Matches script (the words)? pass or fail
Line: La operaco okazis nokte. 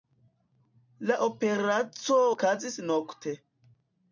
pass